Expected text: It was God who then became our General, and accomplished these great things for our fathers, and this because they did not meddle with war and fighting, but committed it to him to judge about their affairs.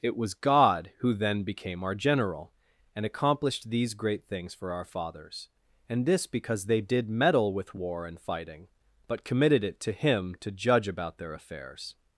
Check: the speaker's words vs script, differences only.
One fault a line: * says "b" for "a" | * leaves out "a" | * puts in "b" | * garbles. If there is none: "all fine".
* leaves out "not"